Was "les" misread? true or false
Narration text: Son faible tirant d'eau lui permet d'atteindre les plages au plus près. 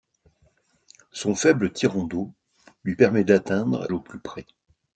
true